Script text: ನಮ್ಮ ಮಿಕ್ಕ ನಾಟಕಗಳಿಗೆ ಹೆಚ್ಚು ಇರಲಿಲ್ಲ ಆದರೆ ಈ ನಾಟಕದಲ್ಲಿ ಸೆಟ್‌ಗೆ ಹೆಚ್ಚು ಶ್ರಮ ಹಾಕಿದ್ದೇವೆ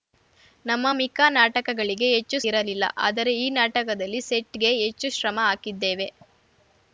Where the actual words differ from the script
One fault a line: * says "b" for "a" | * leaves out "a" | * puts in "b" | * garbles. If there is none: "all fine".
all fine